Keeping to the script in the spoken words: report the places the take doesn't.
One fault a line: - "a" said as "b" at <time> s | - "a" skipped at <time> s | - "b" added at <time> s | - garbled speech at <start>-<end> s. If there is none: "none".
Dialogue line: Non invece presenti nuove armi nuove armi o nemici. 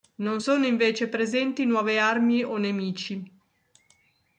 - "sono" added at 0.4 s
- "nuove armi" skipped at 2.4 s